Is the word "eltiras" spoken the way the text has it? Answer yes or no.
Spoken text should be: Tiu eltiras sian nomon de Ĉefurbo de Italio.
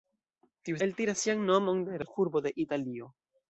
yes